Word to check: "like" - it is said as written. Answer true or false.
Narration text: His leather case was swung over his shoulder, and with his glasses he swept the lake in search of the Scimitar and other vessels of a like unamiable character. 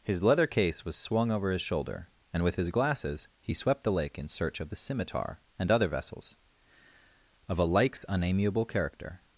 false